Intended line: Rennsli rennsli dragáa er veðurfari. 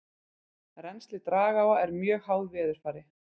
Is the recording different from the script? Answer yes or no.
yes